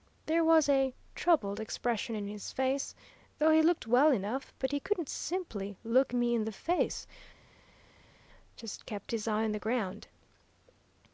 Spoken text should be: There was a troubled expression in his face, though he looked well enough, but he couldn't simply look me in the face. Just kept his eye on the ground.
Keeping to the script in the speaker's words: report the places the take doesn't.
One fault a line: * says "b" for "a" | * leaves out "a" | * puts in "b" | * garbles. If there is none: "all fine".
all fine